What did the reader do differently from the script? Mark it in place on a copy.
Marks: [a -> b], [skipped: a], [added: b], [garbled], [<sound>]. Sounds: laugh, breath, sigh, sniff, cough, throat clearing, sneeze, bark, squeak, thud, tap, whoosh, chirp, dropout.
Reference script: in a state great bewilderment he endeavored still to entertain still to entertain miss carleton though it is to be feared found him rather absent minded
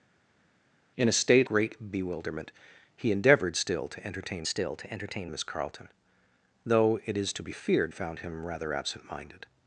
in a state great bewilderment he endeavored still to entertain still to entertain miss carleton though it is to be feared found him rather absent minded